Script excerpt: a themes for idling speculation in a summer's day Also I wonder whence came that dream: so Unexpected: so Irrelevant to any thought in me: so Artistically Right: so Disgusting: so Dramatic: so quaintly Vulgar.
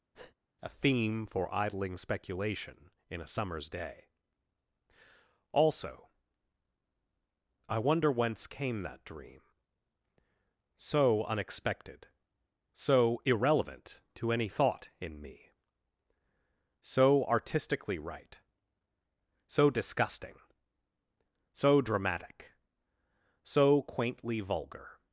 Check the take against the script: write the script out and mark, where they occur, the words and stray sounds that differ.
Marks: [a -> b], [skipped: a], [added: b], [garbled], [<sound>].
[breath] a [themes -> theme] for idling speculation in a summer's day Also I wonder whence came that dream: so Unexpected: so Irrelevant to any thought in me: so Artistically Right: so Disgusting: so Dramatic: so quaintly Vulgar.